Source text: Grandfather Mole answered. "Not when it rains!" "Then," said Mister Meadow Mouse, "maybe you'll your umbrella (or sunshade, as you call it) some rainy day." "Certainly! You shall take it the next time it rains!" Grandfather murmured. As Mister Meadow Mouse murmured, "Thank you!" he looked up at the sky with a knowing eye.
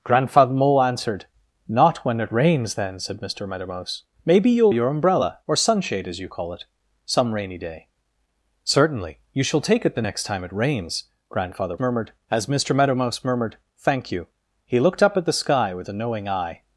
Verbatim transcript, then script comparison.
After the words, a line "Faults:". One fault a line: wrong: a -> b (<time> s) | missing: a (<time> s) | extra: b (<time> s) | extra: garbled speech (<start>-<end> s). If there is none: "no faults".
Grandfather Mole answered. "Not when it rains!" "Then," said Mister Meadow Mouse, "maybe you'll your umbrella (or sunshade, as you call it) some rainy day." "Certainly! You shall take it the next time it rains!" Grandfather murmured. As Mister Meadow Mouse murmured, "Thank you!" he looked up at the sky with a knowing eye.
Faults:
no faults